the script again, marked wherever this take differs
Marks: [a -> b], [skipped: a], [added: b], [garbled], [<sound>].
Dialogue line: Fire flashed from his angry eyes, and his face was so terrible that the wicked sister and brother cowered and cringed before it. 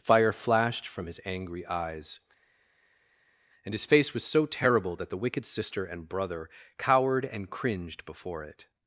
Fire flashed from his angry eyes, and his face was so terrible that the wicked sister and brother cowered and cringed before it.